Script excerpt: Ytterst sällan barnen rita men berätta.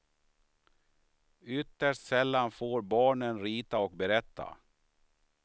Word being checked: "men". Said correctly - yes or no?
no